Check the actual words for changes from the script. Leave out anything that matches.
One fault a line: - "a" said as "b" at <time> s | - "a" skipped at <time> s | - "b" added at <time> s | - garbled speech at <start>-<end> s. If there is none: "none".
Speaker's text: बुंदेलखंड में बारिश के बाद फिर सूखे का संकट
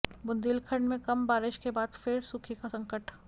- "कम" added at 1.0 s